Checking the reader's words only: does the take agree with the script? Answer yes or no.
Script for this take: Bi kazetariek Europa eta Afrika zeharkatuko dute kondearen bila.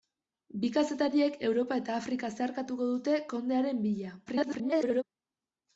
no